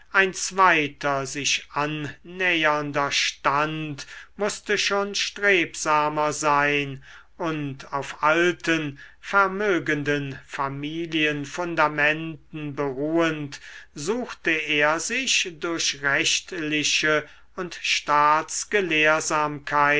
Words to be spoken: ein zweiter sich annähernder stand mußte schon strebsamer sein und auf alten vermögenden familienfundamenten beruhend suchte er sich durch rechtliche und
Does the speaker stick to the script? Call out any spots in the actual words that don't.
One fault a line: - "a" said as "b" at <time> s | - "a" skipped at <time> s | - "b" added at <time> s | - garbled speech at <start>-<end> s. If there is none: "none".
none